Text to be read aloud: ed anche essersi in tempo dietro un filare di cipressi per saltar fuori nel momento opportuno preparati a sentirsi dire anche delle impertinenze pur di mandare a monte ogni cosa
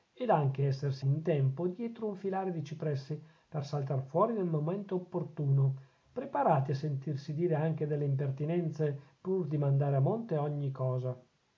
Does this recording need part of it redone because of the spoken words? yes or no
no